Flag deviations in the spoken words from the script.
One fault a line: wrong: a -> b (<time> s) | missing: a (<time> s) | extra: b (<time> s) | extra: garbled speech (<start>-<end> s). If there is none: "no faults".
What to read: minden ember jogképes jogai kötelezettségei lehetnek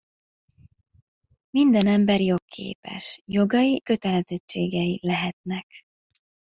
no faults